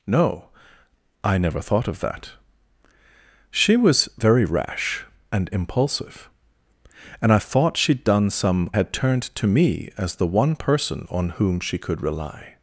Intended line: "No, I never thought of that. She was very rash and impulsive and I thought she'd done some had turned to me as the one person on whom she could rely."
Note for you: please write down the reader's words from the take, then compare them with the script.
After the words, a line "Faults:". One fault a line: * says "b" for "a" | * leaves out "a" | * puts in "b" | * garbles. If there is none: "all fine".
"No, I never thought of that. She was very rash and impulsive and I thought she'd done some had turned to me as the one person on whom she could rely."
Faults:
all fine